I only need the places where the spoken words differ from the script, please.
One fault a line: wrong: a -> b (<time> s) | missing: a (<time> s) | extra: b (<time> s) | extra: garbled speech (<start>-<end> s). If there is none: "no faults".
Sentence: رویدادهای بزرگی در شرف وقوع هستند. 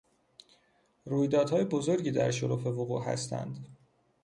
no faults